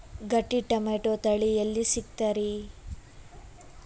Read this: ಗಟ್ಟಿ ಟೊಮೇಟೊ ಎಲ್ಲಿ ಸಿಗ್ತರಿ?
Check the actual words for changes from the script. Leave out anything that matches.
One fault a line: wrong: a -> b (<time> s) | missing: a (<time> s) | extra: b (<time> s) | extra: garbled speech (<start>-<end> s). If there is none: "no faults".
extra: ತಳಿ (1.1 s)